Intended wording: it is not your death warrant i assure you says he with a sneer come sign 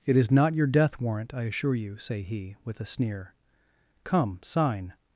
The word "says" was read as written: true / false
false